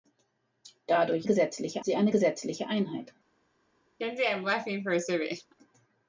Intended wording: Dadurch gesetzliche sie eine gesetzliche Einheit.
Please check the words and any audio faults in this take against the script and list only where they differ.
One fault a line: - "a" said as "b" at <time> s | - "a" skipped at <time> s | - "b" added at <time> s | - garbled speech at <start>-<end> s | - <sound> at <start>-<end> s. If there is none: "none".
- laugh at 4.0-5.5 s